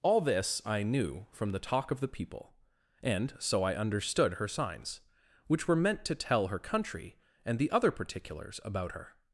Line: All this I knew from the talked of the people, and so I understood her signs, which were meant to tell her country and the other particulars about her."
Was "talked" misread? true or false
true